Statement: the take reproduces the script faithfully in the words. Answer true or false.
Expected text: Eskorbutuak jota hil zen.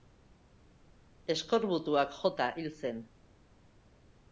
true